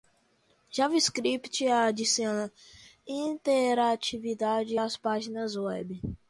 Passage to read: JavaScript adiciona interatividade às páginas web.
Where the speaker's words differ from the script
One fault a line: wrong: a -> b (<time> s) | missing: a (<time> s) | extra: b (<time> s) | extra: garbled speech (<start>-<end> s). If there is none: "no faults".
no faults